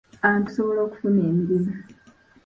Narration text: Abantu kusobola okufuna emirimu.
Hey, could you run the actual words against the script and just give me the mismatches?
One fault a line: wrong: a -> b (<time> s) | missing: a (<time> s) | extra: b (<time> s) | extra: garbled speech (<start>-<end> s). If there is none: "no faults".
no faults